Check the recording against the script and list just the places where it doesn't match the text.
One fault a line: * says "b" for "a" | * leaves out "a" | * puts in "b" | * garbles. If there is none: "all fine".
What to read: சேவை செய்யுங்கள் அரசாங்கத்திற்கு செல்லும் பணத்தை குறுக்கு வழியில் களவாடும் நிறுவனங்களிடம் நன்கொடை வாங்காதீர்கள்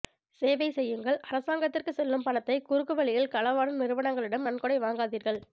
all fine